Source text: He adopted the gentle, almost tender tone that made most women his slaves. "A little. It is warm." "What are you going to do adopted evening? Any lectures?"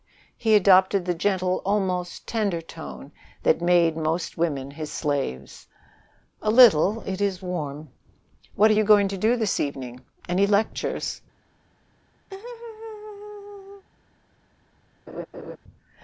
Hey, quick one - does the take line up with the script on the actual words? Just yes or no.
no